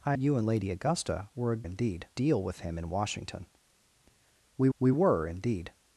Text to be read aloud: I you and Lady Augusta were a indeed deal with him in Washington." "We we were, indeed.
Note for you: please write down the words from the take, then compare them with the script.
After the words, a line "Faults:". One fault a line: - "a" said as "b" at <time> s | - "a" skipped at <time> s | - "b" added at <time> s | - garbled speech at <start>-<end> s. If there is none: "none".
I you and Lady Augusta were a indeed deal with him in Washington." "We we were, indeed.
Faults:
none